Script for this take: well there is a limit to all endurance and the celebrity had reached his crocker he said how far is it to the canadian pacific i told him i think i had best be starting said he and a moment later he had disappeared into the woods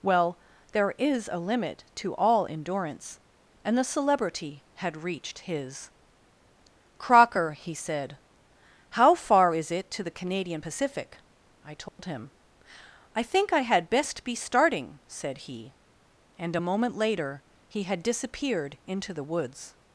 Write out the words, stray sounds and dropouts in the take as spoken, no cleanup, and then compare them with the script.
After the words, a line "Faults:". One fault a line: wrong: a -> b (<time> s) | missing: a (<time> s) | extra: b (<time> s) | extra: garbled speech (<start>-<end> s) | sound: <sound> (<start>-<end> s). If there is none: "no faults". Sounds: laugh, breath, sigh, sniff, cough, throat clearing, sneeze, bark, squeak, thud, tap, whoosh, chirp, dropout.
well there is a limit to all endurance and the celebrity had reached his crocker he said how far is it to the canadian pacific i told him i think i had best be starting said he and a moment later he had disappeared into the woods
Faults:
sound: dropout (11.9-12.0 s)